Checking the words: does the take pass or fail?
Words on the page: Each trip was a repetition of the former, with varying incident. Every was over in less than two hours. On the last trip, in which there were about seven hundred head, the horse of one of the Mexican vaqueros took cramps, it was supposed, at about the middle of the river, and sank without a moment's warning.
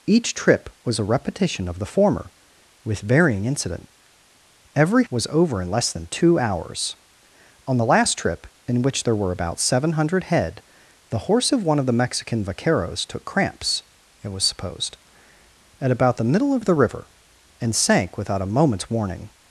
pass